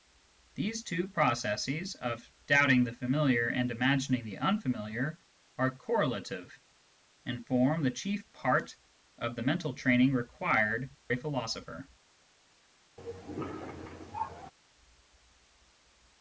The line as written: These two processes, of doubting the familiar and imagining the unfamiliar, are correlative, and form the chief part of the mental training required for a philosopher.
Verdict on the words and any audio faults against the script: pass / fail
fail